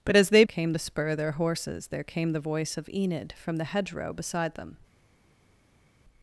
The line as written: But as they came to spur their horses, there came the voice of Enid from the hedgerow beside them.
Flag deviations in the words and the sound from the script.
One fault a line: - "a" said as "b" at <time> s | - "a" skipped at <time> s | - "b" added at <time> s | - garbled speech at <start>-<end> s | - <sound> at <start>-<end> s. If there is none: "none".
none